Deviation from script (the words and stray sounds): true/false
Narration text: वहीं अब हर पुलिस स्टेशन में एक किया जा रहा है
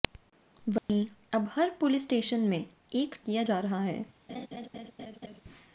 true